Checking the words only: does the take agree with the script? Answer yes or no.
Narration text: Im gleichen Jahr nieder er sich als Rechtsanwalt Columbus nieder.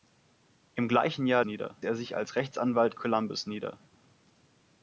yes